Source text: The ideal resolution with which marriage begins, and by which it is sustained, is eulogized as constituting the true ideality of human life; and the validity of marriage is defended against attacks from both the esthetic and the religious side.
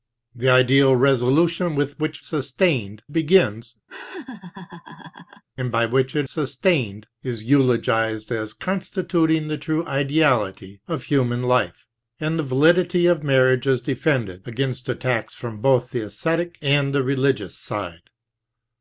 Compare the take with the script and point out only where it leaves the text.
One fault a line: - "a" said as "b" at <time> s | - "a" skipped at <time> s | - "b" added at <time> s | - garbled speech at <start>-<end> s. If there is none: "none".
- "marriage" said as "sustained" at 2.2 s
- "is" skipped at 6.3 s